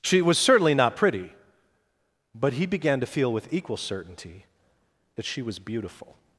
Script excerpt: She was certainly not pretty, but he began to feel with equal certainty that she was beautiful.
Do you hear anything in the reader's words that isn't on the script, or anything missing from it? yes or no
no